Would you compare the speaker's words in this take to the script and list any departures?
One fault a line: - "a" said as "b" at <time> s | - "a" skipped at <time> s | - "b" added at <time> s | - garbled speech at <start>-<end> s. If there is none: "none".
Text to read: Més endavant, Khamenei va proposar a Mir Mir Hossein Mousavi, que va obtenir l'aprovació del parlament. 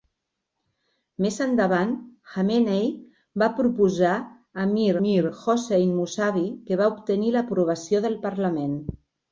none